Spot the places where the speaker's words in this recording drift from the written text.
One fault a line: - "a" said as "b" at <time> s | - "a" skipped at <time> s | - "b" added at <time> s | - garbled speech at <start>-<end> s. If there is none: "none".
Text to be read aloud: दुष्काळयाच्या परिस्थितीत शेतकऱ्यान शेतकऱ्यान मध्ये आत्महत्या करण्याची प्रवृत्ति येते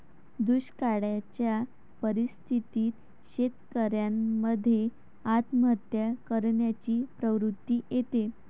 - "शेतकऱ्यान" skipped at 4.1 s